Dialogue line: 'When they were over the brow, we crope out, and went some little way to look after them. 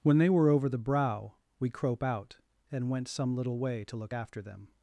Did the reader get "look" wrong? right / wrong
right